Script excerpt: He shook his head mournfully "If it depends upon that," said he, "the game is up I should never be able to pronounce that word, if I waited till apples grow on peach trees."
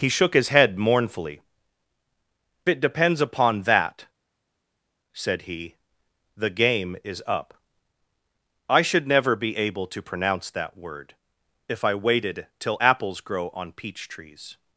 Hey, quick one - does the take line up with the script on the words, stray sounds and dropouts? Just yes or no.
no